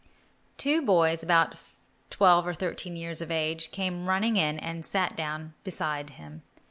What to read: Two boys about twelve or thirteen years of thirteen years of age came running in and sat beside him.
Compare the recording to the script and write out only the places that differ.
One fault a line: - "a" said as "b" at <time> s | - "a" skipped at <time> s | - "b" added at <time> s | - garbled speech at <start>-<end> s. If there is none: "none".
- "thirteen years of" skipped at 3.3 s
- "down" added at 5.2 s